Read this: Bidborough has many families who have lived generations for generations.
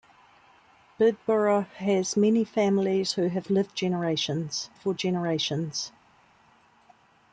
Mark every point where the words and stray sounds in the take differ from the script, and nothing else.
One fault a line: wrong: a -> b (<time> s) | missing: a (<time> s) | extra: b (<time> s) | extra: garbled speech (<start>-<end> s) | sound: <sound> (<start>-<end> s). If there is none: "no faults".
no faults